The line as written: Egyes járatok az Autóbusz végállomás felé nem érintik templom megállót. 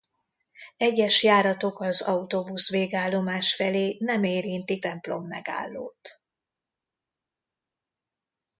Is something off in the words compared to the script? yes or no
no